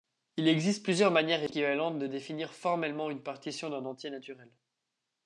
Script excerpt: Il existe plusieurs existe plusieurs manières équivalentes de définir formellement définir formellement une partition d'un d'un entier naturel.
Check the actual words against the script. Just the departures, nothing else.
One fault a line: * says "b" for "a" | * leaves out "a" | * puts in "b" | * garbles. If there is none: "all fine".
* leaves out "existe plusieurs"
* leaves out "définir formellement"
* leaves out "d'un"